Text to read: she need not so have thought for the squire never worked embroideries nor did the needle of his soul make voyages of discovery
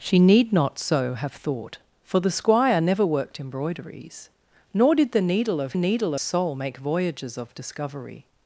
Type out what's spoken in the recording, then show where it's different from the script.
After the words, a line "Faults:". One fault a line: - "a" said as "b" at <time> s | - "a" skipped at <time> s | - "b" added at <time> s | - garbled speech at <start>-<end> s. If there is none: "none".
she need not so have thought for the squire never worked embroideries nor did the needle of needle soul make voyages of discovery
Faults:
- "his" said as "needle" at 5.7 s